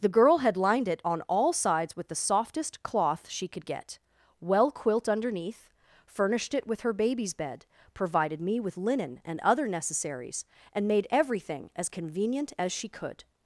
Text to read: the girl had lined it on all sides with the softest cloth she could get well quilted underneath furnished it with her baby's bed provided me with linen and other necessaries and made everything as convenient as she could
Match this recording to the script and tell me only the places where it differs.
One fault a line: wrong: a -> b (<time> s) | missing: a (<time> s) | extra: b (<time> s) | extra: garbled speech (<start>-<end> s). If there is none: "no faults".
wrong: quilted -> quilt (4.7 s)